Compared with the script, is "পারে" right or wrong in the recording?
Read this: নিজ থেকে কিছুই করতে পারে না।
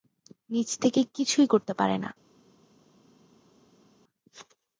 right